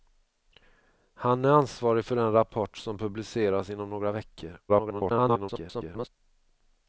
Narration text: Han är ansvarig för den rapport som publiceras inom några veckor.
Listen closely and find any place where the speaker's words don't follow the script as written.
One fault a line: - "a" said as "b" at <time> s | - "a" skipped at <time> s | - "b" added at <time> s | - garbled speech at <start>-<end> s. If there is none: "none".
- garbled speech at 4.7-6.1 s